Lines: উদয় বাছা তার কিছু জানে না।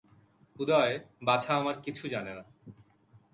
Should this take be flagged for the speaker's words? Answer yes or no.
yes